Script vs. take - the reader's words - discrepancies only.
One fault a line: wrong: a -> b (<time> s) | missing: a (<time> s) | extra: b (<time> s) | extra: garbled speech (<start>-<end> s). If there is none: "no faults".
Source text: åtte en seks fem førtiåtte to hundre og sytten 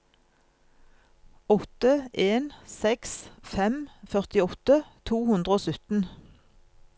no faults